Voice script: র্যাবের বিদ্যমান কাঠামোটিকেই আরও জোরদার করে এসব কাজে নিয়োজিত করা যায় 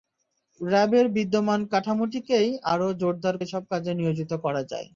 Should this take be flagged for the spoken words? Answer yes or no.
yes